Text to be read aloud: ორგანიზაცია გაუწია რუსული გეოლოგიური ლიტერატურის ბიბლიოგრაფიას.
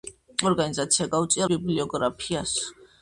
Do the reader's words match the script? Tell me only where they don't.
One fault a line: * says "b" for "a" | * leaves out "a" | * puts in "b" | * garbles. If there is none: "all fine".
* leaves out "რუსული გეოლოგიური ლიტერატურის"